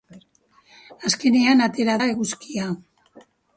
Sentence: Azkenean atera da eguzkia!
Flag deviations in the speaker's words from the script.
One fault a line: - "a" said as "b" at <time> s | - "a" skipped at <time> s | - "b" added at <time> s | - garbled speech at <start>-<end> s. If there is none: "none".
none